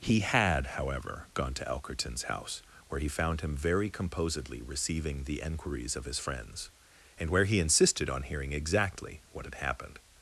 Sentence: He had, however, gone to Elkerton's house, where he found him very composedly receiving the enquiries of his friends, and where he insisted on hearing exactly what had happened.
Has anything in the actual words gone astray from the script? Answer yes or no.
no